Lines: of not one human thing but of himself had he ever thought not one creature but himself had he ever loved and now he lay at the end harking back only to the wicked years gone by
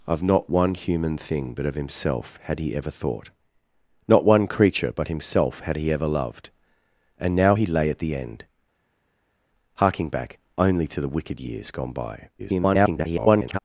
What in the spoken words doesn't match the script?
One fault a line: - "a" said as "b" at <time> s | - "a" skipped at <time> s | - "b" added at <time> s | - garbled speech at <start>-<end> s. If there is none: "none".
- garbled speech at 12.4-13.6 s